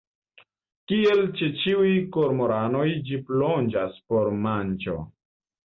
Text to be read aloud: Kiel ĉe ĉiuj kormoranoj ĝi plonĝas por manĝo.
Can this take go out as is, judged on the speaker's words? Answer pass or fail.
pass